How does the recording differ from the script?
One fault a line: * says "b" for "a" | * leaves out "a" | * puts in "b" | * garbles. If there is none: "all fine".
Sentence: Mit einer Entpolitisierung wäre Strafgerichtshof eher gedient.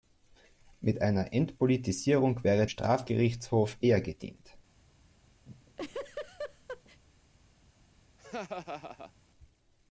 all fine